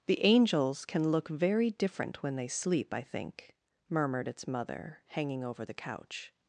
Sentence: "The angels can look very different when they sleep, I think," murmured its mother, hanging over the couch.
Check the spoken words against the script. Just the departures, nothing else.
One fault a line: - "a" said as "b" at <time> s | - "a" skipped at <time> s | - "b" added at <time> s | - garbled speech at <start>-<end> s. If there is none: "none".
none